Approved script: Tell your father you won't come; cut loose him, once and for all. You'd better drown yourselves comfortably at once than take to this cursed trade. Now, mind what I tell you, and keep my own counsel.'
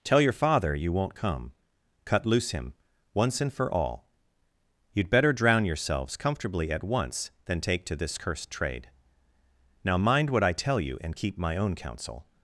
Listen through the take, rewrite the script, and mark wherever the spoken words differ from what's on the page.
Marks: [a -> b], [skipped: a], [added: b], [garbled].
Tell your father you won't come; cut loose him, once and for all. You'd better drown yourselves comfortably at once than take to this cursed trade. Now, mind what I tell you, and keep my own counsel.'